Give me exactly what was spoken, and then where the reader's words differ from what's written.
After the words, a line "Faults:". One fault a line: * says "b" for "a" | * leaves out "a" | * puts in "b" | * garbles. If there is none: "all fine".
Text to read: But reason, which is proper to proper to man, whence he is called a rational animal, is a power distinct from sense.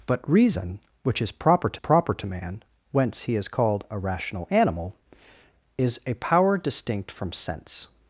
But reason, which is proper to proper to man, whence he is called a rational animal, is a power distinct from sense.
Faults:
all fine